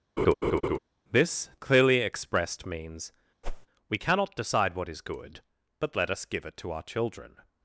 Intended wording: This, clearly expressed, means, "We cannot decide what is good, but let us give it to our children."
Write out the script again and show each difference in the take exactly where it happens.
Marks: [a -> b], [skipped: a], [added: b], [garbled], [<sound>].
[laugh] This, clearly expressed, means, [whoosh] "We cannot decide what is good, but let us give it to our children."